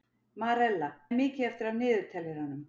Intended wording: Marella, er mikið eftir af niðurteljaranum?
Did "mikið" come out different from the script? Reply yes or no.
no